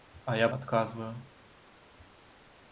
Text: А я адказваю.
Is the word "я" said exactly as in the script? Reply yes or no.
yes